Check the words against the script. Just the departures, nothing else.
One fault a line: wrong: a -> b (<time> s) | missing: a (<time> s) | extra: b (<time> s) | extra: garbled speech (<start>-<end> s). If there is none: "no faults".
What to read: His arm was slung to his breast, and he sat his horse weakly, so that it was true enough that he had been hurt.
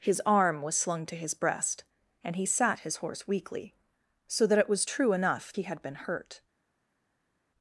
missing: that (5.5 s)